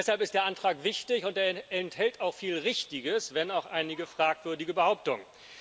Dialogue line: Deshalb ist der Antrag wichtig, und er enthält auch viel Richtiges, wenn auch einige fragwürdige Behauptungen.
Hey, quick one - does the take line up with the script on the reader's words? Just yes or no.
yes